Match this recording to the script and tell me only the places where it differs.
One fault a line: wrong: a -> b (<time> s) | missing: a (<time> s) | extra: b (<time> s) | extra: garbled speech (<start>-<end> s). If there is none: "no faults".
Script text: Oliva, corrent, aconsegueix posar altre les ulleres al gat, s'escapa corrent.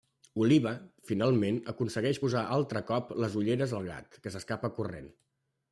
wrong: corrent -> finalment (1.1 s)
extra: cop (2.9 s)
extra: que (4.2 s)